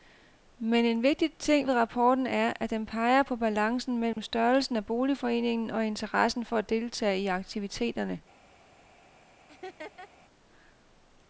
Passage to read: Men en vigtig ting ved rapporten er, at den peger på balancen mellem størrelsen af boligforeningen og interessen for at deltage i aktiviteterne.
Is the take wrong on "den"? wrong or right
right